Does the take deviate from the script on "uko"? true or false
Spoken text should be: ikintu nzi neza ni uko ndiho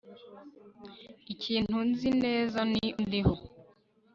true